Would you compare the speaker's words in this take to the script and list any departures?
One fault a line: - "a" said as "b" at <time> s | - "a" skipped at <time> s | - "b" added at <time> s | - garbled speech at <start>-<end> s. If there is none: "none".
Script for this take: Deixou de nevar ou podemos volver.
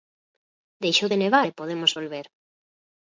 - "ou" said as "e" at 1.5 s